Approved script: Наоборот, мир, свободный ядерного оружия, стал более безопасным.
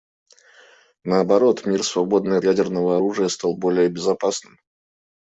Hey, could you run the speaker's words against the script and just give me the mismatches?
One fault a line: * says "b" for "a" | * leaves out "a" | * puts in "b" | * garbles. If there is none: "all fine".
all fine